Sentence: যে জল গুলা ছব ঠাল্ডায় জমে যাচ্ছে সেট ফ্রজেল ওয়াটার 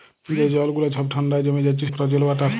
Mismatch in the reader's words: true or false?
true